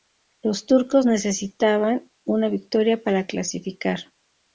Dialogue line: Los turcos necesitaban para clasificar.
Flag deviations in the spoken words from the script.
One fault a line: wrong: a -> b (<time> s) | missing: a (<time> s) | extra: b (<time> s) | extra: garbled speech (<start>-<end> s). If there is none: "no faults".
extra: una victoria (2.2 s)